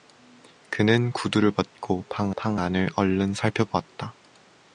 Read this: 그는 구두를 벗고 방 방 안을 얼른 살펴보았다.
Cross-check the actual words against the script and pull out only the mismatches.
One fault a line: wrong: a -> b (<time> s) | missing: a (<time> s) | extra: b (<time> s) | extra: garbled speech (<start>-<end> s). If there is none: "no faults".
no faults